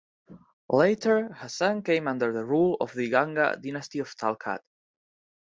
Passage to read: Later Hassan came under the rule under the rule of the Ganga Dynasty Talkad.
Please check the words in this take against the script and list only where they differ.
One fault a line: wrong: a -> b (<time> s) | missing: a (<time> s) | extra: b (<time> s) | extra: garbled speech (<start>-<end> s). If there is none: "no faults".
missing: under the rule (2.8 s)
extra: of (4.0 s)